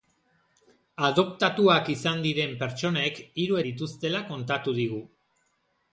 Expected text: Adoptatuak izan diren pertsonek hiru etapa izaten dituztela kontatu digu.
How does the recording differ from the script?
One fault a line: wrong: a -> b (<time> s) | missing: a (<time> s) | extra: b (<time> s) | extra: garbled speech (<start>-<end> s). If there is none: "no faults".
missing: etapa izaten (3.6 s)